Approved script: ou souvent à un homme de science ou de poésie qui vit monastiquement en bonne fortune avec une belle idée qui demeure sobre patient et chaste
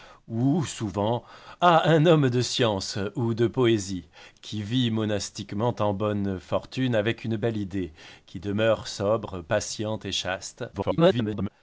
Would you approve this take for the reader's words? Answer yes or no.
no